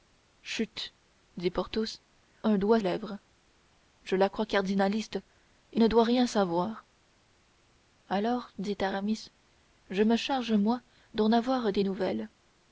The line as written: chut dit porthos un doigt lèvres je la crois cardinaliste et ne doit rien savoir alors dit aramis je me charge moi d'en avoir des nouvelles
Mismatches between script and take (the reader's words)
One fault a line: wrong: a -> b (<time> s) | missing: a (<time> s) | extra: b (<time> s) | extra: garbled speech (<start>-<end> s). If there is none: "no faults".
no faults